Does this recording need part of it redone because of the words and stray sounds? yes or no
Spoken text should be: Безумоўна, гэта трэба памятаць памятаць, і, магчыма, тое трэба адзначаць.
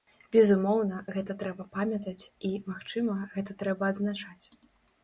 yes